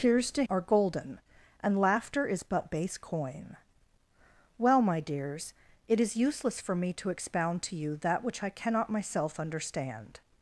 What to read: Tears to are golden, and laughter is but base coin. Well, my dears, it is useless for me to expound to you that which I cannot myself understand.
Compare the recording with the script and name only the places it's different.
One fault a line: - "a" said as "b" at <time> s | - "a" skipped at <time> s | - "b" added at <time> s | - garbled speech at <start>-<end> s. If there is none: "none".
none